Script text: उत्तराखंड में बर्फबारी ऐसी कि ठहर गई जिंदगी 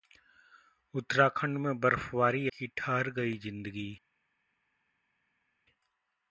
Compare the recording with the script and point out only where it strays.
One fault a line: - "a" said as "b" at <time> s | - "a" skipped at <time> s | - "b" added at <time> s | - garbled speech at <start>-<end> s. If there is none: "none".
- "ऐसी" skipped at 2.5 s